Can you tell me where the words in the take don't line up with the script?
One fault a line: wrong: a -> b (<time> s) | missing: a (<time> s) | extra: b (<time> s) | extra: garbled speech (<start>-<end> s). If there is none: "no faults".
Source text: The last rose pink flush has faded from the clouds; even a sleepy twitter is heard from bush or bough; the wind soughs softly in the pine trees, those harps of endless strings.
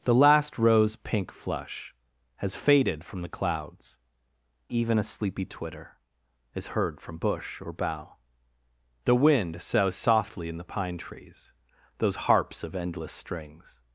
no faults